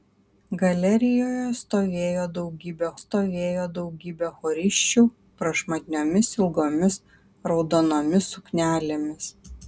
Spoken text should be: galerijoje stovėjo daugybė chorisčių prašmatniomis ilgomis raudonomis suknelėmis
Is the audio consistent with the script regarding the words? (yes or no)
no